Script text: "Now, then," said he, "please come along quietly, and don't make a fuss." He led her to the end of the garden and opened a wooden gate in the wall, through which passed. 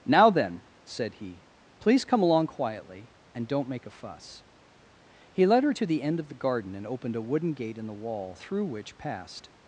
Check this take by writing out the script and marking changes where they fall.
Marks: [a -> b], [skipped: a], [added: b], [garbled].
"Now, then," said he, "please come along quietly, and don't make a fuss." He led her to the end of the garden and opened a wooden gate in the wall, through which passed.